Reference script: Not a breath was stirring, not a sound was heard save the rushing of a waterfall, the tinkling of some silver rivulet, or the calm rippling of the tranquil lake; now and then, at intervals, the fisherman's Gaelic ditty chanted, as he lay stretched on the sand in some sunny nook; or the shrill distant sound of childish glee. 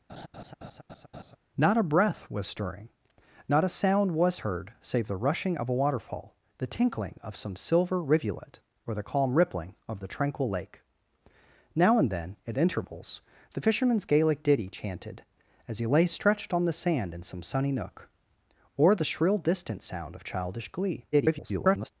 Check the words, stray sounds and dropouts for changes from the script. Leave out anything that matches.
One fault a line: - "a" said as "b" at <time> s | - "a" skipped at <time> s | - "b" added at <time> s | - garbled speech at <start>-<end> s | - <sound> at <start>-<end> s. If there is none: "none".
- laugh at 0.1-1.4 s
- garbled speech at 21.1-21.9 s